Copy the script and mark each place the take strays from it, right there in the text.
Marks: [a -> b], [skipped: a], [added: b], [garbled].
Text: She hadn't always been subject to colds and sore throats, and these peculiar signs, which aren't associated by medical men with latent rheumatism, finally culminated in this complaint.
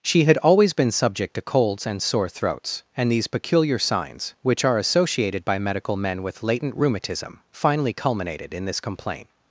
She [hadn't -> had] always been subject to colds and sore throats, and these peculiar signs, which [aren't -> are] associated by medical men with latent rheumatism, finally culminated in this complaint.